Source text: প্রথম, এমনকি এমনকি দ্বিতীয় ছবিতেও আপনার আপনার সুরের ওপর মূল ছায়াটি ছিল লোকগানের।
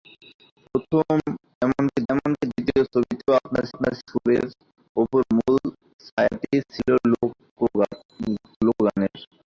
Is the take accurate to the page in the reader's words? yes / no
yes